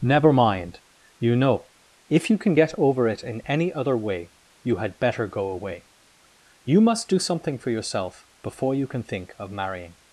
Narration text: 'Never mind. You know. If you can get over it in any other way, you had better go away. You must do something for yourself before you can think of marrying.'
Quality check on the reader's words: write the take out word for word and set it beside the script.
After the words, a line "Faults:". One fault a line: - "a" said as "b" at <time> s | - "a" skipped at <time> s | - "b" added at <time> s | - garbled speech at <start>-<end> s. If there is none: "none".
'Never mind. You know. If you can get over it in any other way, you had better go away. You must do something for yourself before you can think of marrying.'
Faults:
none